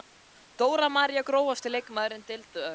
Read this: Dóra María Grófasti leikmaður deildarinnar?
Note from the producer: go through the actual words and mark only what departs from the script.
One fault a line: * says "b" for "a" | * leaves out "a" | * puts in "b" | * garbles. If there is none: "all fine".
all fine